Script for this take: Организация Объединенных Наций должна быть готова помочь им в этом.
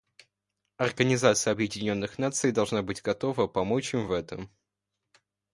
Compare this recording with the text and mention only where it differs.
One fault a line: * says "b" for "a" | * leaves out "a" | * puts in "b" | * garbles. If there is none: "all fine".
all fine